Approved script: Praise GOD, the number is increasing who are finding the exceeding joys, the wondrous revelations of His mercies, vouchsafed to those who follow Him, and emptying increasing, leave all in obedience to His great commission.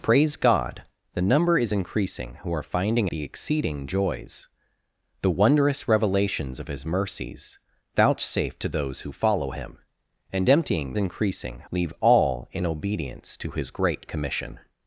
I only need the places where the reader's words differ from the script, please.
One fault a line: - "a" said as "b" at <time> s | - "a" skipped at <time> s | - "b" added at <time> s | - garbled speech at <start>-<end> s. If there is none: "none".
none